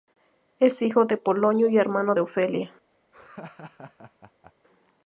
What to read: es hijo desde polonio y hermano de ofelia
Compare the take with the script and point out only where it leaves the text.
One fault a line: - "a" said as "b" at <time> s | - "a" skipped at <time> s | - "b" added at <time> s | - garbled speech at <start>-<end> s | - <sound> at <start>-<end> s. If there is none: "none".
- "desde" said as "de" at 1.1 s
- laugh at 3.1-4.5 s